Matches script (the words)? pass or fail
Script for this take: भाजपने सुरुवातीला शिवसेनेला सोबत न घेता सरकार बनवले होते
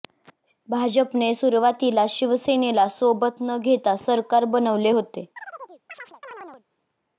pass